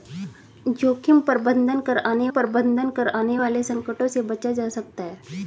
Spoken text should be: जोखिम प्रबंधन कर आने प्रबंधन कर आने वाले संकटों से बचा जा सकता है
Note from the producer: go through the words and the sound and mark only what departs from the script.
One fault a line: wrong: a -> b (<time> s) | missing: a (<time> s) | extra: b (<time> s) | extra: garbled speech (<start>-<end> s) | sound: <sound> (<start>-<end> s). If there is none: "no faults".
no faults